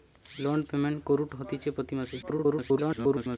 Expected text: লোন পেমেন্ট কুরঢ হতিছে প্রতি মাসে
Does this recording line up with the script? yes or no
no